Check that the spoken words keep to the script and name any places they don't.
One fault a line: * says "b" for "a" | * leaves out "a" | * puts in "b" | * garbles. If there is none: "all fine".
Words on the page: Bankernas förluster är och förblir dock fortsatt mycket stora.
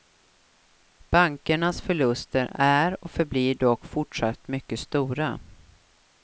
all fine